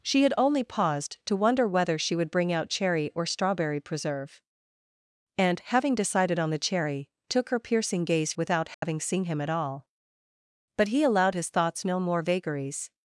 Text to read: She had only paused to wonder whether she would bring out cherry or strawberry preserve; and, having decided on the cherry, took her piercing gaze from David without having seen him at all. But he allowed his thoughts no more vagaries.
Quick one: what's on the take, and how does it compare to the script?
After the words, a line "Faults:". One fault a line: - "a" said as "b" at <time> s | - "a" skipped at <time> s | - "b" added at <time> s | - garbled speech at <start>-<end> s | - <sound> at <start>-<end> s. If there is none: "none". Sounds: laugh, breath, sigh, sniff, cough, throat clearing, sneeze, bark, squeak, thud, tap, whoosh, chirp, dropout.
She had only paused to wonder whether she would bring out cherry or strawberry preserve; and, having decided on the cherry, took her piercing gaze without having seen him at all. But he allowed his thoughts no more vagaries.
Faults:
- "from David" skipped at 8.3 s
- dropout at 8.7-8.8 s